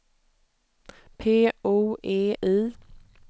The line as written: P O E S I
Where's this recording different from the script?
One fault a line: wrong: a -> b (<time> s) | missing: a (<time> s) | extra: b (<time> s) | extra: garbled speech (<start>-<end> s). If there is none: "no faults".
missing: S (2.3 s)